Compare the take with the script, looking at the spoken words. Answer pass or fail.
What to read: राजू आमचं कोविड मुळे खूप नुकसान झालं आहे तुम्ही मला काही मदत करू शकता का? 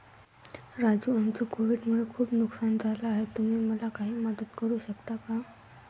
pass